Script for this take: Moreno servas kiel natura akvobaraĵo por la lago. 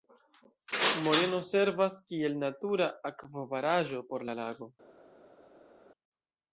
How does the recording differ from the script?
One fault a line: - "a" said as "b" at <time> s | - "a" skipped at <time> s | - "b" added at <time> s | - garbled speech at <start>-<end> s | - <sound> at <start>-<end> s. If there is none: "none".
none